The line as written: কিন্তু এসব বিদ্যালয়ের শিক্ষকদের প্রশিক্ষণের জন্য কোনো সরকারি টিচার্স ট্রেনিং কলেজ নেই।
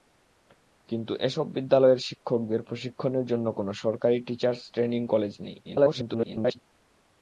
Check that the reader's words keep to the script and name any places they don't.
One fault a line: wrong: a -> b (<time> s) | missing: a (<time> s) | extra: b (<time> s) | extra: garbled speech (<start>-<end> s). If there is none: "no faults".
extra: garbled speech (5.6-6.6 s)